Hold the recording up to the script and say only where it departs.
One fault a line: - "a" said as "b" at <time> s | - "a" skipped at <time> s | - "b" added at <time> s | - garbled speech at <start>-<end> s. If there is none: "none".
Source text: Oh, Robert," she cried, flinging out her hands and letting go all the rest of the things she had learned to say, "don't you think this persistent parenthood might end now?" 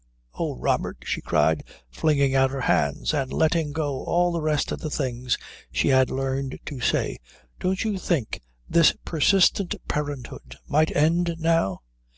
none